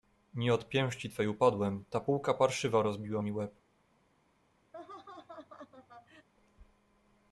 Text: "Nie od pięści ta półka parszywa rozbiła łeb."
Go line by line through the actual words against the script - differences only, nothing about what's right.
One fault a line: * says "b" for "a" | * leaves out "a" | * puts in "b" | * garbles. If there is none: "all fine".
* puts in "twej upadłem"
* puts in "mi"